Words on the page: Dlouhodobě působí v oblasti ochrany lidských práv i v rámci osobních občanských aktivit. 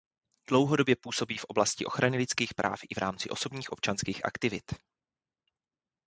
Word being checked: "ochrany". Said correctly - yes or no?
yes